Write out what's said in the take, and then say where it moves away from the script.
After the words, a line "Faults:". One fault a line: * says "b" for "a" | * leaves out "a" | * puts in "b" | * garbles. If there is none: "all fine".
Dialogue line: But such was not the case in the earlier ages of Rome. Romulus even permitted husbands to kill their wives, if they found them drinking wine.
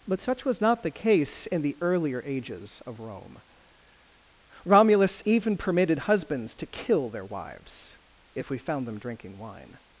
But such was not the case in the earlier ages of Rome. Romulus even permitted husbands to kill their wives, if we found them drinking wine.
Faults:
* says "we" for "they"